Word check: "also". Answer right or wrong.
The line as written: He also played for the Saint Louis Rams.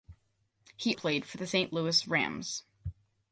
wrong